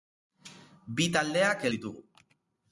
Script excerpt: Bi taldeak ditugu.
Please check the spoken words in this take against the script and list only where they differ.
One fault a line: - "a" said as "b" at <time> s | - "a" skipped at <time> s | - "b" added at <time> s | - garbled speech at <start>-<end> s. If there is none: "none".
none